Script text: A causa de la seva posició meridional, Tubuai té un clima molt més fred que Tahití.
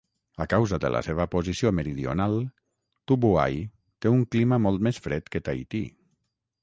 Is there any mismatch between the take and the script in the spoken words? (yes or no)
no